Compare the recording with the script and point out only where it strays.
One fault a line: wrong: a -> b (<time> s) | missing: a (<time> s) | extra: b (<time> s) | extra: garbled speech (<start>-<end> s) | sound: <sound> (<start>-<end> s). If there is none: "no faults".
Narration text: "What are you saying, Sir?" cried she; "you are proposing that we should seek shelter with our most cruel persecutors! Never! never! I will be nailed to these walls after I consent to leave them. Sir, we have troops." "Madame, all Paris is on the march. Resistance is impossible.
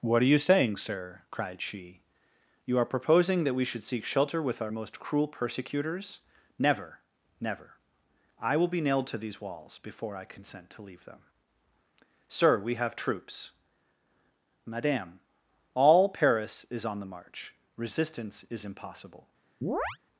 wrong: after -> before (9.8 s)
sound: chirp (19.6-20.0 s)